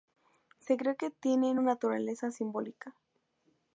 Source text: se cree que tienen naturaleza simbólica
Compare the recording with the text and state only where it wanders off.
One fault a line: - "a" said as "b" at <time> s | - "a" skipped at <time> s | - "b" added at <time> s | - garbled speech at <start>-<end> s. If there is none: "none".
none